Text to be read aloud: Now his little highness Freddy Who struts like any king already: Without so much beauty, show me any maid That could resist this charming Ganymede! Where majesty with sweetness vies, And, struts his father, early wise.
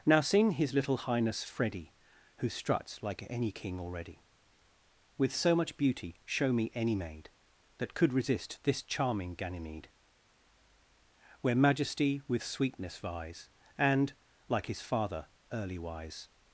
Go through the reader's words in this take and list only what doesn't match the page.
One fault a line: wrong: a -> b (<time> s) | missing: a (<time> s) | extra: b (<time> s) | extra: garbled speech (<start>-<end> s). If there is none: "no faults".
extra: sing (0.2 s)
wrong: Without -> With (5.2 s)
wrong: struts -> like (14.5 s)